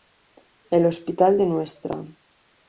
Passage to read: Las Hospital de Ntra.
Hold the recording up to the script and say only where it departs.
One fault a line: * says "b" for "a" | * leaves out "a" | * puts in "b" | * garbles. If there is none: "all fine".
* says "El" for "Las"